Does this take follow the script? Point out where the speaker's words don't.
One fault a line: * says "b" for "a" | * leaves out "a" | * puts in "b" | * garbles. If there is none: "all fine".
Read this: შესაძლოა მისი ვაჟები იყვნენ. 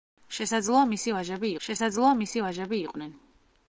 * puts in "შესაძლოა მისი ვაჟები"